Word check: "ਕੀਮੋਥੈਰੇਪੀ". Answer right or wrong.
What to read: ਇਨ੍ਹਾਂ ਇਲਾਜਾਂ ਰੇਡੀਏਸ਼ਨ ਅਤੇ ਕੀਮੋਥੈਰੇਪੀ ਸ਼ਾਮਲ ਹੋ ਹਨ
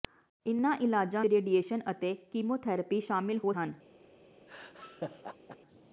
right